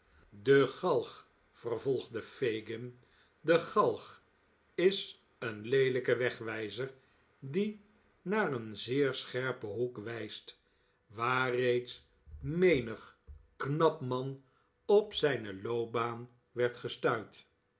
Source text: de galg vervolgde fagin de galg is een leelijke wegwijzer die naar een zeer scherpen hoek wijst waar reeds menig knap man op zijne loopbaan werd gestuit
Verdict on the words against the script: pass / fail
pass